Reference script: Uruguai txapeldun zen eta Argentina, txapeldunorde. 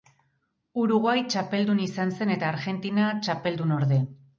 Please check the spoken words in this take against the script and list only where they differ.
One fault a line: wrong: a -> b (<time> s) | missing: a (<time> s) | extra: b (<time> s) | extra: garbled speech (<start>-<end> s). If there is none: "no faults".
extra: izan (1.9 s)